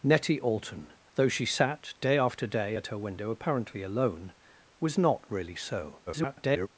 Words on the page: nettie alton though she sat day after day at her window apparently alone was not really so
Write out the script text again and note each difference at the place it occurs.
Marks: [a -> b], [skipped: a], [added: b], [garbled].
nettie alton though she sat day after day at her window apparently alone was not really so [garbled]